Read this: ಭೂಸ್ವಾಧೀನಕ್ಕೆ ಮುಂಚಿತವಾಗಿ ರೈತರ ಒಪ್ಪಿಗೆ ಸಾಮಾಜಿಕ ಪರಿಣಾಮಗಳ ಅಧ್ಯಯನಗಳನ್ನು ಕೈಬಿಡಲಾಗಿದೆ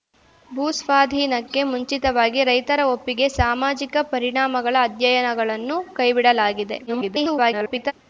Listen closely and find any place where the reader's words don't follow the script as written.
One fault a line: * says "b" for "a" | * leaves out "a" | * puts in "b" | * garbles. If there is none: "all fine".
* garbles